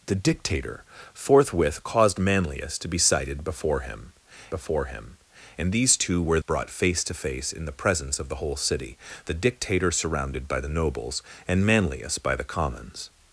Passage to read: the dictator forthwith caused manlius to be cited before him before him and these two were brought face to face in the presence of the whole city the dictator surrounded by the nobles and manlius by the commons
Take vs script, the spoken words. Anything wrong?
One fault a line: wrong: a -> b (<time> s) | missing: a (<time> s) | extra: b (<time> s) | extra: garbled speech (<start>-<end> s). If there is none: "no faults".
no faults